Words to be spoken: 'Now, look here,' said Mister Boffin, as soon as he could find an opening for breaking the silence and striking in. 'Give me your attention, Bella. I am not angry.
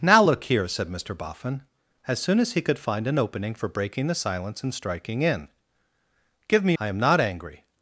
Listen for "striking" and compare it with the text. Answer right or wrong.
right